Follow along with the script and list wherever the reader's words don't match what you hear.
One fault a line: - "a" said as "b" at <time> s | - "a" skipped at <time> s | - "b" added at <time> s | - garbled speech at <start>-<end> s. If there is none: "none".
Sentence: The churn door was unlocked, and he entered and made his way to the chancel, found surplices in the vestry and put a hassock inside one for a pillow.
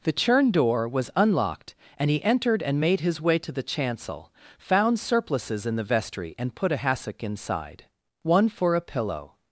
none